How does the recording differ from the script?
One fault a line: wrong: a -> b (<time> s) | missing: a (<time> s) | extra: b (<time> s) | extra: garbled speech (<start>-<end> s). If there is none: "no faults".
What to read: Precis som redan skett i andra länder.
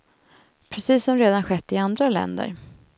no faults